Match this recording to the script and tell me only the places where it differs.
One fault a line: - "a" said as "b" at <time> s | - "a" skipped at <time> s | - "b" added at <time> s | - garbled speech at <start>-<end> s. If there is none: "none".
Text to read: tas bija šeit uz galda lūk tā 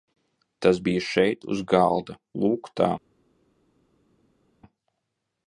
none